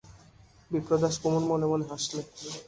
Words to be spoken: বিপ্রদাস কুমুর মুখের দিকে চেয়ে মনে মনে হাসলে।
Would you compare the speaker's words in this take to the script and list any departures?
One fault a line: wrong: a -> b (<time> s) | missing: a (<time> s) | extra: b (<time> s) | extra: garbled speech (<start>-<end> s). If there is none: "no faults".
missing: মুখের দিকে চেয়ে (1.4 s)